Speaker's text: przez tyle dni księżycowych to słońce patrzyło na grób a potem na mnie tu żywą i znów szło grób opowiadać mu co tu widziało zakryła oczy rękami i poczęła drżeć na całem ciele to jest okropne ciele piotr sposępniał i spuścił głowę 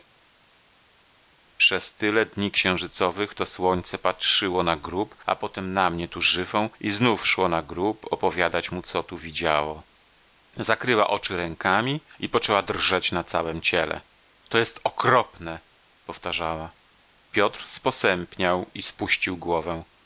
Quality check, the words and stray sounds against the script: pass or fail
fail